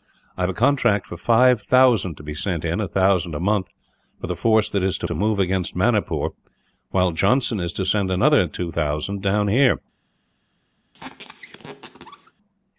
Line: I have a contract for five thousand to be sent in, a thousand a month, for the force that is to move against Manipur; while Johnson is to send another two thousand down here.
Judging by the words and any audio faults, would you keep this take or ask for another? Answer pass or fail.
fail